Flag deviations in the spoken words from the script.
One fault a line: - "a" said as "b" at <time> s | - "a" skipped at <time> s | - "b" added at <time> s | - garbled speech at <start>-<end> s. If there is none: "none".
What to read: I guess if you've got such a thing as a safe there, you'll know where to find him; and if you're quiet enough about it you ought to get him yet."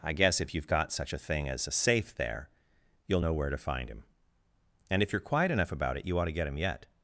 none